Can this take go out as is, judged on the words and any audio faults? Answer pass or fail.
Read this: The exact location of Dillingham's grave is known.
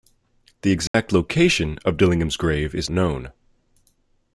fail